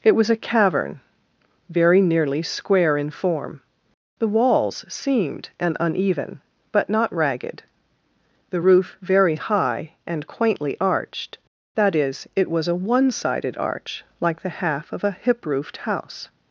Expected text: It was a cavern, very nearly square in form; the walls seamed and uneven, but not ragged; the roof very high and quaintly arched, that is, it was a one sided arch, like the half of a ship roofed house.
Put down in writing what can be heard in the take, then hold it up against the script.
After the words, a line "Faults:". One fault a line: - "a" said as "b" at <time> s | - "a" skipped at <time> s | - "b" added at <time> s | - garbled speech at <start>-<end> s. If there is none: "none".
It was a cavern, very nearly square in form; the walls seamed and uneven, but not ragged; the roof very high and quaintly arched, that is, it was a one sided arch, like the half of a hip roofed house.
Faults:
- "ship" said as "hip" at 15.1 s